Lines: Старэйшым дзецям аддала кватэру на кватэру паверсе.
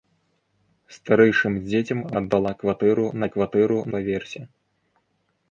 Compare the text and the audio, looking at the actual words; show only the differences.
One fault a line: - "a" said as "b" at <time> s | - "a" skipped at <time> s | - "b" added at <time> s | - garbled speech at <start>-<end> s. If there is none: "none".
none